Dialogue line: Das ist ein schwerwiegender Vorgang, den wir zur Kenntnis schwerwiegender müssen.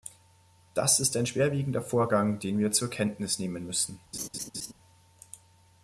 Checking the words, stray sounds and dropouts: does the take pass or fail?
fail